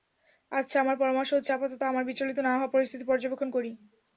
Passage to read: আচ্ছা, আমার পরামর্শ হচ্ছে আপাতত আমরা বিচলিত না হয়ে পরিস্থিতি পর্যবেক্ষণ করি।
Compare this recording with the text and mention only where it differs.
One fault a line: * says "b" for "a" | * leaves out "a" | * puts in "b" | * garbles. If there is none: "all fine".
all fine